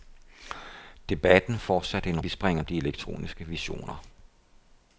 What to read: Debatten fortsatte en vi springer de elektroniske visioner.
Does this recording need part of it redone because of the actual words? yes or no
no